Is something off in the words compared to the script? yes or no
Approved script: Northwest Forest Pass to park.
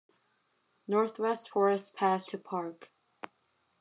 no